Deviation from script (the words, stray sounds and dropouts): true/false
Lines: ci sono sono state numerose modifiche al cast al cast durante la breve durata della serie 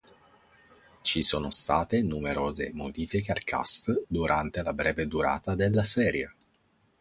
true